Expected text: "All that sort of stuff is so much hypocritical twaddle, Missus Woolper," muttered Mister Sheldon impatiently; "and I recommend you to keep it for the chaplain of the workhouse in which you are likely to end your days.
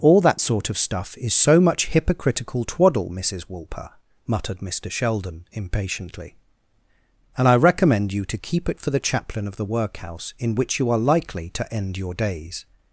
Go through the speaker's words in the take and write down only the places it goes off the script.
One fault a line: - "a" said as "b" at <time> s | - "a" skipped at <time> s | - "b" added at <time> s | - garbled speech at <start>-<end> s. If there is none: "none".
none